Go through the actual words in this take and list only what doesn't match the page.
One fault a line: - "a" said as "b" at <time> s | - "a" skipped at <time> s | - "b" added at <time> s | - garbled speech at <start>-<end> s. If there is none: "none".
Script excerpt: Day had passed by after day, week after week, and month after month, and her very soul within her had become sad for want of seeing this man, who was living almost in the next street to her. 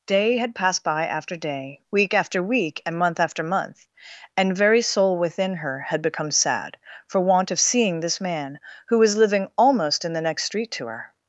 - "her" skipped at 4.6 s